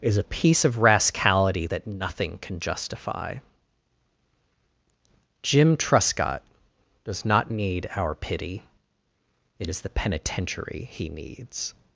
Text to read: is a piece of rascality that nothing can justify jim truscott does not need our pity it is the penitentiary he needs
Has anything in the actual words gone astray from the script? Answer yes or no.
no